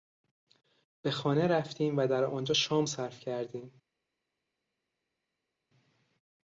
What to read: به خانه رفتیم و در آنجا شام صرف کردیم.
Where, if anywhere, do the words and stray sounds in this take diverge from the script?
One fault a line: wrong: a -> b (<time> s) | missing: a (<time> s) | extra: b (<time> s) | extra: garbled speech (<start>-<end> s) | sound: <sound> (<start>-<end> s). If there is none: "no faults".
no faults